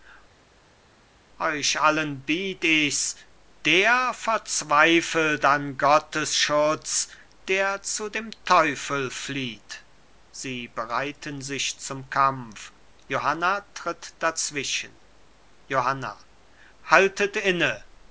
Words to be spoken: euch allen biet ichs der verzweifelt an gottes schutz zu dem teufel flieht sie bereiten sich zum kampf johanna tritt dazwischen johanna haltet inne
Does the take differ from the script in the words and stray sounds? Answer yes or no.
yes